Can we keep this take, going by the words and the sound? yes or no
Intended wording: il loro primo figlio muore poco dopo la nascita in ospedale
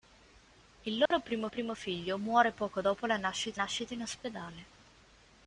no